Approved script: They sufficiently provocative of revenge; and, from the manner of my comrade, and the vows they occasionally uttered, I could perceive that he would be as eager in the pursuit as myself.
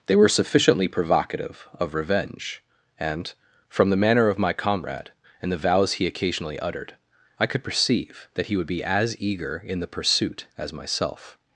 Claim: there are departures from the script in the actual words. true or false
true